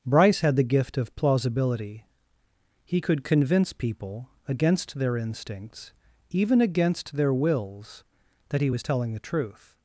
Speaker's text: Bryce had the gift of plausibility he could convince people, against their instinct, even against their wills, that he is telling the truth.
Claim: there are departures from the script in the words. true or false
true